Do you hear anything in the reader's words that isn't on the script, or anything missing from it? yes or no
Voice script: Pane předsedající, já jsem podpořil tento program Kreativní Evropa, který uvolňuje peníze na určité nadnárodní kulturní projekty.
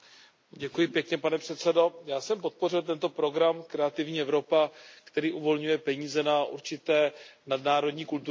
no